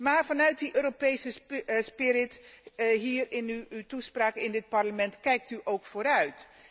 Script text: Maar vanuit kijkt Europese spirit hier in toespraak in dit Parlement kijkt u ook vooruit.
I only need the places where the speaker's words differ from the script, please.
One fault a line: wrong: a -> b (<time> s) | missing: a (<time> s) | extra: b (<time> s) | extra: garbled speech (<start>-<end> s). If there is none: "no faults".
wrong: kijkt -> die (0.6 s)
extra: uw (3.7 s)